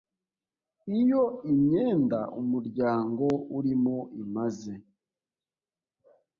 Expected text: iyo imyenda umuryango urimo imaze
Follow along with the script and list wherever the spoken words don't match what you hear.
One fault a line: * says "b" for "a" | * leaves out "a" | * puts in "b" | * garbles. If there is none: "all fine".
all fine